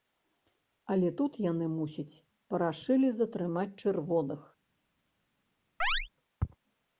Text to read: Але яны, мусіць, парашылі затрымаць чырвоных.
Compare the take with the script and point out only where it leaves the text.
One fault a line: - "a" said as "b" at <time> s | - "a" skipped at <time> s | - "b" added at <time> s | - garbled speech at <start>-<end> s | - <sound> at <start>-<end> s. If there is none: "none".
- "тут" added at 1.2 s
- chirp at 5.8-6.1 s